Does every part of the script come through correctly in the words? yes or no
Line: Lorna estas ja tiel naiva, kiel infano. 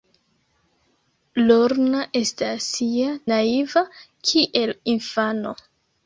no